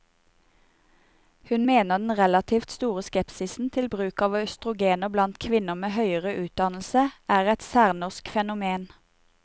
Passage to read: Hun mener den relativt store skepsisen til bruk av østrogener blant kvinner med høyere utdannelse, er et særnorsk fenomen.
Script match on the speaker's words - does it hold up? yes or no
yes